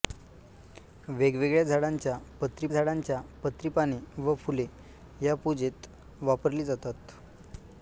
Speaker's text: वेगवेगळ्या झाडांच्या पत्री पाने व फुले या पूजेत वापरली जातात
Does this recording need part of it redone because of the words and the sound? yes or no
yes